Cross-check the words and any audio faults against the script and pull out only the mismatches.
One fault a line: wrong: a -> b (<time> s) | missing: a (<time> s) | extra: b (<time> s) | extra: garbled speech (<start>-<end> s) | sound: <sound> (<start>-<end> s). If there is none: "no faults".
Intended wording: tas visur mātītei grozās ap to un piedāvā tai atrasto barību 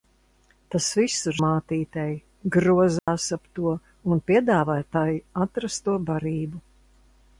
sound: dropout (3.0-3.1 s)